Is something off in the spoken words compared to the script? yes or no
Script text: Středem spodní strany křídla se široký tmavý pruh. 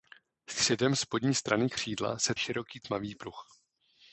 no